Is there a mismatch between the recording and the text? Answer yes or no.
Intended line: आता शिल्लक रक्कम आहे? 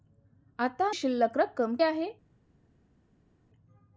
no